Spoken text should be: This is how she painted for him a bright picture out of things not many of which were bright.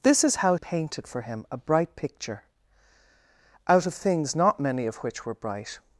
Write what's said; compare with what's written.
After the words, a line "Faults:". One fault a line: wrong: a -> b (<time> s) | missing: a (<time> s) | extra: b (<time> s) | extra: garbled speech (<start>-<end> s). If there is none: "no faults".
This is how painted for him a bright picture out of things not many of which were bright.
Faults:
missing: she (0.6 s)